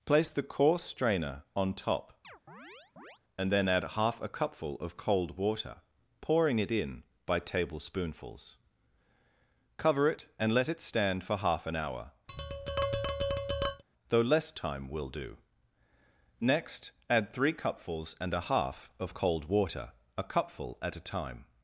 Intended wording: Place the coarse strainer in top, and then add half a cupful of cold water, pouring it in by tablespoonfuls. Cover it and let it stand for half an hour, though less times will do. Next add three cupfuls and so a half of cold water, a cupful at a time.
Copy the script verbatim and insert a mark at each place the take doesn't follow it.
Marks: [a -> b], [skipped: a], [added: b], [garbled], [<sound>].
Place the coarse strainer [in -> on] top, [chirp] and then add half a cupful of cold water, pouring it in by tablespoonfuls. Cover it and let it stand for half an hour, [tap] though less [times -> time] will do. Next add three cupfuls and [skipped: so] a half of cold water, a cupful at a time.